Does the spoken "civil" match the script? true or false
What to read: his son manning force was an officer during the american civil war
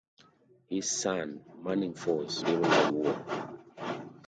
false